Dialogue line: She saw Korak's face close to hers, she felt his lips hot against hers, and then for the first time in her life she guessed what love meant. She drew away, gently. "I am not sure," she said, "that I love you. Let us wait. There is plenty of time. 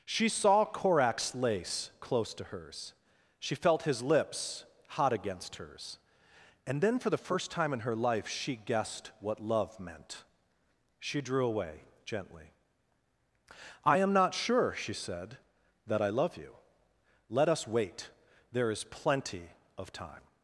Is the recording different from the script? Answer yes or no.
yes